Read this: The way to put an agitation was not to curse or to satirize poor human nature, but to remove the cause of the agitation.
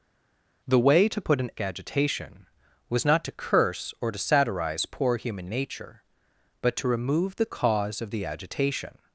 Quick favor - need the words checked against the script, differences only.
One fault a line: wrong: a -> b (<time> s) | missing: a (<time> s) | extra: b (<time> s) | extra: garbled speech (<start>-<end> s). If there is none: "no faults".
no faults